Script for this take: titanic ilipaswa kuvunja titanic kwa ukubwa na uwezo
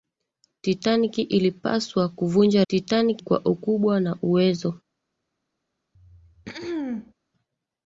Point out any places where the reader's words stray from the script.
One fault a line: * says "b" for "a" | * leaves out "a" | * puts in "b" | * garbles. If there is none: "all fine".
all fine